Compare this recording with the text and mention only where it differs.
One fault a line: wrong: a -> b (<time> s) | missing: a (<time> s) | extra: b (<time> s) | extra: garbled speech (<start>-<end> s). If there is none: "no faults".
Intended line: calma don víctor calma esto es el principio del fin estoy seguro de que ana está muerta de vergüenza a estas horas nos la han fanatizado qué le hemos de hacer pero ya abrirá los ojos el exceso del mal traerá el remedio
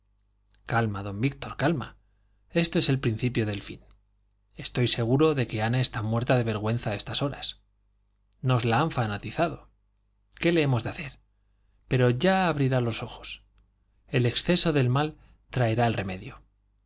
no faults